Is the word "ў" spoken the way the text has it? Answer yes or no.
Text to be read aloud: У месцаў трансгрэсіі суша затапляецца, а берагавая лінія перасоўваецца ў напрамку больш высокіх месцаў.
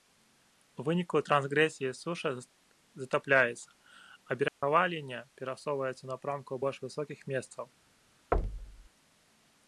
yes